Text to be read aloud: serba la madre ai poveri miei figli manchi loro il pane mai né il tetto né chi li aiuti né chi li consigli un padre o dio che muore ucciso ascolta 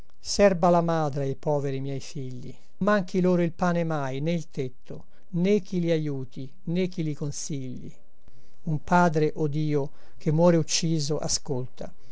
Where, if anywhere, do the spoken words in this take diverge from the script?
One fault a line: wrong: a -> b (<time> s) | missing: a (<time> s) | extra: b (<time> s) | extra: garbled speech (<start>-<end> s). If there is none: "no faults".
no faults